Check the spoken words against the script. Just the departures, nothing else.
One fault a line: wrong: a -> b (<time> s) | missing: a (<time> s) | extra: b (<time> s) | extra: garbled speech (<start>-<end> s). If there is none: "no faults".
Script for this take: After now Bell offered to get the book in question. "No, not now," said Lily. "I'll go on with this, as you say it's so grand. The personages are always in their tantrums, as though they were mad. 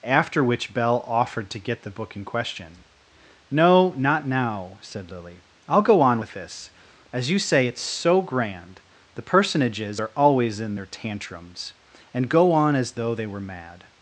wrong: now -> which (0.4 s)
extra: and go on (12.1 s)